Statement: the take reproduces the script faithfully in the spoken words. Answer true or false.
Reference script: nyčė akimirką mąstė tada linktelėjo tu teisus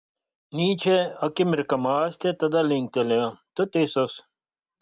true